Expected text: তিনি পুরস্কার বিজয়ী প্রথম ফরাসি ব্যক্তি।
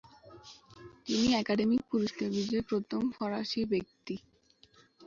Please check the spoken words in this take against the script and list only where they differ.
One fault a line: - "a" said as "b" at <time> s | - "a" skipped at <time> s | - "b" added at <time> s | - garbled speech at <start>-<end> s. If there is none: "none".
- "একাডেমি" added at 1.4 s